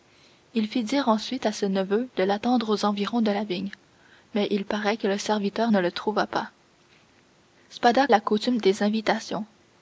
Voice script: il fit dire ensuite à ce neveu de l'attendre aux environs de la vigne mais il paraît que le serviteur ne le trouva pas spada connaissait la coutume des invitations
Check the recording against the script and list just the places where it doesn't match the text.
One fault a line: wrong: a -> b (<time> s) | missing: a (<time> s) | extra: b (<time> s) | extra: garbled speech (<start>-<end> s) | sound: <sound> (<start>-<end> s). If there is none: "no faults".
missing: connaissait (8.1 s)